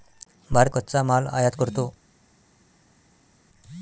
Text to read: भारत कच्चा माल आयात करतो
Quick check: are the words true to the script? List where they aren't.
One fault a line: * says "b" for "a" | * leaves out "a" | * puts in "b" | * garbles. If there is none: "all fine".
all fine